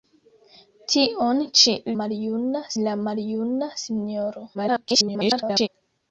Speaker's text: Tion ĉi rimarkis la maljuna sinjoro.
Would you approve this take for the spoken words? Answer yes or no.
no